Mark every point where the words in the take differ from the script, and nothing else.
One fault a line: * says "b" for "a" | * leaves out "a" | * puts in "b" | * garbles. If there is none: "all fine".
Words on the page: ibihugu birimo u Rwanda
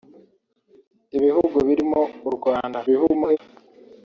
* garbles